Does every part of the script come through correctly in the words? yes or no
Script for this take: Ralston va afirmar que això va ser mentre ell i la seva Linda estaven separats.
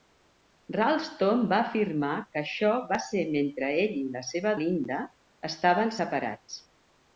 yes